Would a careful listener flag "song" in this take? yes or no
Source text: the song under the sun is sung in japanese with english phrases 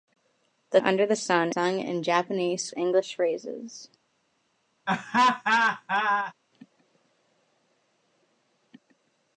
yes